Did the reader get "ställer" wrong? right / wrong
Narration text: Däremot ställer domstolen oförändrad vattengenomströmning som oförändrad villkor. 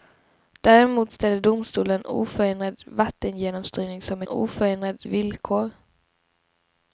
right